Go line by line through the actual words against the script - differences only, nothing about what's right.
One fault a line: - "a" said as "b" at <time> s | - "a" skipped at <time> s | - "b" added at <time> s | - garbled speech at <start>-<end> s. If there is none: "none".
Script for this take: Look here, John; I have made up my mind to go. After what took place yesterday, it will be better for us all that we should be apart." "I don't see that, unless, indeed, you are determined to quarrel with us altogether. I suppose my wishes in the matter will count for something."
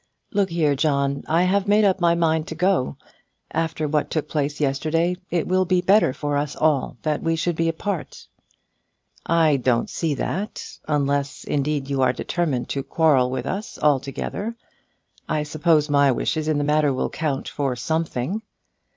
none